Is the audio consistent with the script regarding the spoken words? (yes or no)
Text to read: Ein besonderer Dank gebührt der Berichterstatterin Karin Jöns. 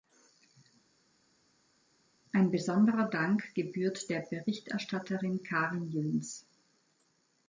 yes